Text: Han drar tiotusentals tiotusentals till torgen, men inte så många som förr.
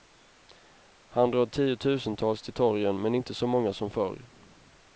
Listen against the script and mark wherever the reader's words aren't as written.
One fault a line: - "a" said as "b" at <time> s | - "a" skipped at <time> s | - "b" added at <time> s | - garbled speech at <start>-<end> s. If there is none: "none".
- "tiotusentals" skipped at 2.4 s